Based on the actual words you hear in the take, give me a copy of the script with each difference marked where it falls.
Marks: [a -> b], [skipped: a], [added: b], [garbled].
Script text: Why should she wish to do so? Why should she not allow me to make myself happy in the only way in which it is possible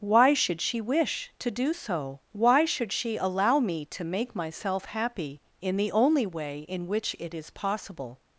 Why should she wish to do so? Why should she [skipped: not] allow me to make myself happy in the only way in which it is possible